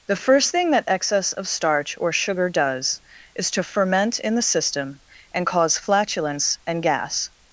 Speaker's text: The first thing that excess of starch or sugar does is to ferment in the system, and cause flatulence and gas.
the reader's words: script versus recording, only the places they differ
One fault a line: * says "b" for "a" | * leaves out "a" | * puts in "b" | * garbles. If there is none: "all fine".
all fine